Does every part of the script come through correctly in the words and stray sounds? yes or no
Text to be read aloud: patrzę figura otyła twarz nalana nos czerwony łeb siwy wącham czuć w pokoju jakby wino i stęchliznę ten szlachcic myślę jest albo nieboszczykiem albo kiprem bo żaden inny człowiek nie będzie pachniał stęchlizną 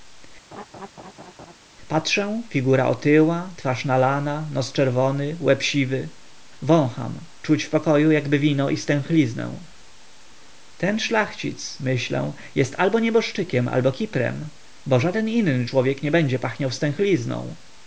no